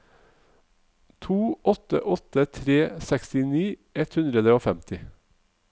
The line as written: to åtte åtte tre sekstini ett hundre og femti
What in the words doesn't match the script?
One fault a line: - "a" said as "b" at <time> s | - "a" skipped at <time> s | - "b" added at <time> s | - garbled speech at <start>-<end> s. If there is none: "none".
none